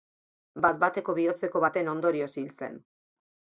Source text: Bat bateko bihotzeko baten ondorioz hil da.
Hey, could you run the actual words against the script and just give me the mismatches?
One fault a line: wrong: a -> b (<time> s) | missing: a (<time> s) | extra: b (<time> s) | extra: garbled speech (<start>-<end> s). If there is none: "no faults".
wrong: da -> zen (2.6 s)